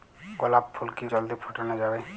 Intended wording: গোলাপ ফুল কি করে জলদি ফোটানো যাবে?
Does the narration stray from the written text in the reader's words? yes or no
yes